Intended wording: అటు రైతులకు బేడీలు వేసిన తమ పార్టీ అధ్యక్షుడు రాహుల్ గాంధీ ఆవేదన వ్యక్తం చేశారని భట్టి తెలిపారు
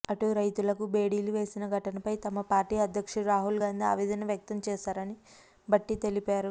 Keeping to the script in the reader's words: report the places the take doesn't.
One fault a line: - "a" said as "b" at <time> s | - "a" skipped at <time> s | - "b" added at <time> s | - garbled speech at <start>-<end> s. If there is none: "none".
- "ఘటనపై" added at 1.7 s